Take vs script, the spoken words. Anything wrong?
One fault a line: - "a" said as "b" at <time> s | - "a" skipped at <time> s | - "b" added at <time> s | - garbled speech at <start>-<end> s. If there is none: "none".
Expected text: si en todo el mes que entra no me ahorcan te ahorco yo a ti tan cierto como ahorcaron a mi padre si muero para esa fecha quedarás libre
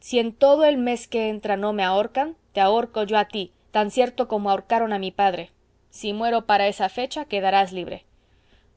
none